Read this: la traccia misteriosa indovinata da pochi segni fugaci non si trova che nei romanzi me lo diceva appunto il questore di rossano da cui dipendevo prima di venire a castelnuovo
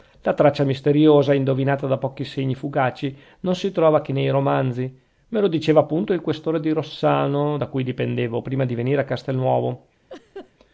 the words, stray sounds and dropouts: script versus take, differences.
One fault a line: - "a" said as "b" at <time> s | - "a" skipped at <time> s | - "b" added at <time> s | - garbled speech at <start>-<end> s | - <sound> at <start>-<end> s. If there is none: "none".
- laugh at 10.1-10.5 s